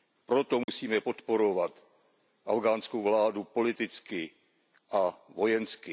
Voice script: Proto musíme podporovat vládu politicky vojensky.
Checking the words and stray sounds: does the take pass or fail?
fail